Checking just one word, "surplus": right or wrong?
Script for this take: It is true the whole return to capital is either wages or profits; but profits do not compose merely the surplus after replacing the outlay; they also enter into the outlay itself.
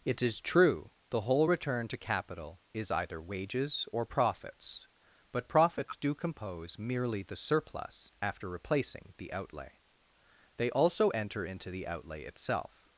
right